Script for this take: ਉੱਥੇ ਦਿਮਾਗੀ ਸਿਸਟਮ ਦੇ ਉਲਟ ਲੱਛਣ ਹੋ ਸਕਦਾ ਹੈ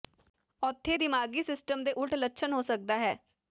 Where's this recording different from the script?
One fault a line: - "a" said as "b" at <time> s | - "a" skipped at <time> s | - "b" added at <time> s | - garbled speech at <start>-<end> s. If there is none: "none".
none